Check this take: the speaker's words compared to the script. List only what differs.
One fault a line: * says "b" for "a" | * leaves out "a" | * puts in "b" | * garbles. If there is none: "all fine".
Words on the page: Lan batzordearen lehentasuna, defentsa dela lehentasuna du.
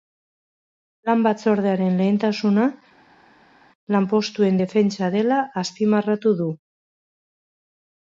* puts in "lanpostuen"
* says "azpimarratu" for "lehentasuna"